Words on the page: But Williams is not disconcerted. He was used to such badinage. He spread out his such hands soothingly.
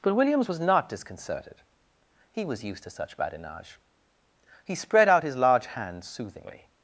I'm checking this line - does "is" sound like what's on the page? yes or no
no